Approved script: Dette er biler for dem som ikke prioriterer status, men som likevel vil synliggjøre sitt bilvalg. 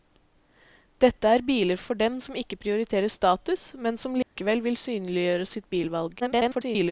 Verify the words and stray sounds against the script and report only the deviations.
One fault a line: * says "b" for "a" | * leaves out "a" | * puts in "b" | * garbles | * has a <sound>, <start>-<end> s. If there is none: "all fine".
* has a dropout, 4.2-4.4 s
* garbles